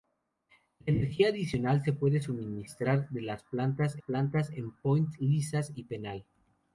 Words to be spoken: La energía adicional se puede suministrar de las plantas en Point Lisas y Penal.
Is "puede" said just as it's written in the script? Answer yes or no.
yes